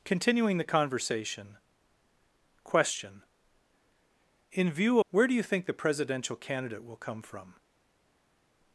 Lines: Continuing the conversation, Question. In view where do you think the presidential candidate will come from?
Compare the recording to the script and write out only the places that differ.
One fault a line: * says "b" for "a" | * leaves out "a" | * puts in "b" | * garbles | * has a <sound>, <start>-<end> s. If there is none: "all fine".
all fine